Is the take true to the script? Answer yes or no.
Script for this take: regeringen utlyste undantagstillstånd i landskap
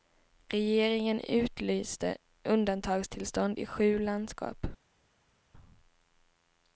no